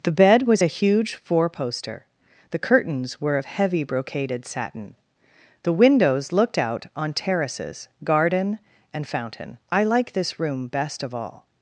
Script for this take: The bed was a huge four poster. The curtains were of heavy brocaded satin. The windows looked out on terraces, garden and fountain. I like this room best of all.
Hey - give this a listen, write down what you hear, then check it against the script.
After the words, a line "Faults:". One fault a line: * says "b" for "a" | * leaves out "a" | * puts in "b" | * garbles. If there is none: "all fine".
The bed was a huge four poster. The curtains were of heavy brocaded satin. The windows looked out on terraces, garden and fountain. I like this room best of all.
Faults:
all fine